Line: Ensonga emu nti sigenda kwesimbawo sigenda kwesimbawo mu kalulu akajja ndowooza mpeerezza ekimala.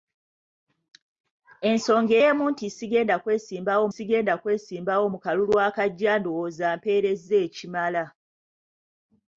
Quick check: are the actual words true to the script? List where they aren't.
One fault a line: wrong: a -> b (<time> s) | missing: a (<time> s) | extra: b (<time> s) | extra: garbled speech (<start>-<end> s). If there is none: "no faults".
no faults